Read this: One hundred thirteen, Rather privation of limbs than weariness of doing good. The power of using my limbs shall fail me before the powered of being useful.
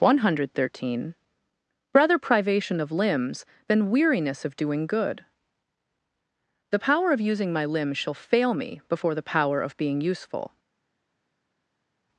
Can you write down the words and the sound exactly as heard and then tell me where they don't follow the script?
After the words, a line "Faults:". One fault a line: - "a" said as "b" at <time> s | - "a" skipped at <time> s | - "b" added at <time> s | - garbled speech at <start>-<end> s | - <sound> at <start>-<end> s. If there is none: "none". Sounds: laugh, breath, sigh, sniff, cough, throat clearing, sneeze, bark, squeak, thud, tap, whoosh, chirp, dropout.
One hundred thirteen, Rather privation of limbs than weariness of doing good. The power of using my limbs shall fail me before the power of being useful.
Faults:
- "powered" said as "power" at 9.2 s